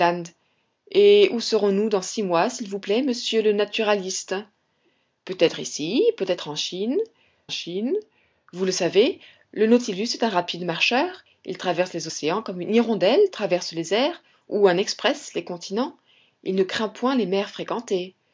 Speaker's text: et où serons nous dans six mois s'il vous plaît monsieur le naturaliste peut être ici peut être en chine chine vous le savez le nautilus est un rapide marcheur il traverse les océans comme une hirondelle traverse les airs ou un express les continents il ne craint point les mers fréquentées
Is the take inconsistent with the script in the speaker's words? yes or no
no